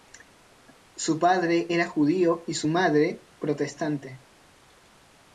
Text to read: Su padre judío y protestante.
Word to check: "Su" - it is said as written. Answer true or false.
true